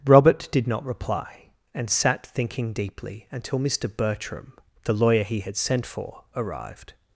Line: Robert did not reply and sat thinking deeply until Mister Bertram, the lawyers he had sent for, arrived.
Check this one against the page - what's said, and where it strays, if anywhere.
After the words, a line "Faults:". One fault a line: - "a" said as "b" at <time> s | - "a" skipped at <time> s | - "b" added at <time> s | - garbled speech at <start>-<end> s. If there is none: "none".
Robert did not reply and sat thinking deeply until Mister Bertram, the lawyer he had sent for, arrived.
Faults:
- "lawyers" said as "lawyer" at 5.0 s